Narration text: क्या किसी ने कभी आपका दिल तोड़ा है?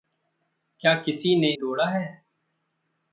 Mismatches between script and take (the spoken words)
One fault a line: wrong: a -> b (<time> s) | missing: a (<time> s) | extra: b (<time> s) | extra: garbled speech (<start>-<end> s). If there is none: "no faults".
missing: कभी आपका दिल (1.5 s)